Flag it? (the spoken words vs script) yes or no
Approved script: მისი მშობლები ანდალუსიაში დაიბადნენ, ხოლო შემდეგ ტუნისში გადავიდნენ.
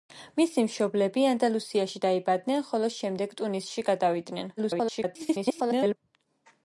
yes